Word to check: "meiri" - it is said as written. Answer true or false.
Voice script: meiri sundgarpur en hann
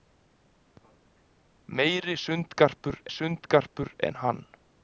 true